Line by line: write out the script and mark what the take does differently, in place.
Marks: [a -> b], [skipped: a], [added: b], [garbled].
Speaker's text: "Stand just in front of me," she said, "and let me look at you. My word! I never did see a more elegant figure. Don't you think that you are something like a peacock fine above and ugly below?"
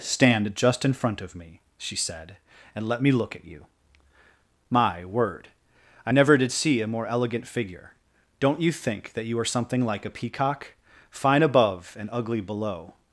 "Stand just in front of me," she said, "and let me look at you. My word! I never did see a more elegant figure. Don't you think that you are something like a peacock fine above and ugly below?"